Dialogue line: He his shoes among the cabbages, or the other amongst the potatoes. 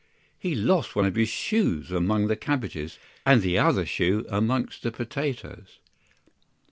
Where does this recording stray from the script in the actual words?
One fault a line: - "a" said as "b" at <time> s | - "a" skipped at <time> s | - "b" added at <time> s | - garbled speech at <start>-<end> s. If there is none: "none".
- "lost one of" added at 0.6 s
- "or" said as "and" at 3.3 s
- "shoe" added at 3.8 s